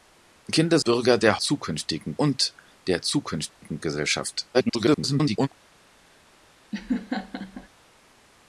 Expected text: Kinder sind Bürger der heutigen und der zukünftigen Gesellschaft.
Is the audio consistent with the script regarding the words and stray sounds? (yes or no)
no